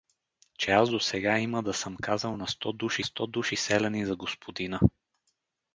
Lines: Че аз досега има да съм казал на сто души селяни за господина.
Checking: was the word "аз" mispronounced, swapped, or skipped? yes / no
no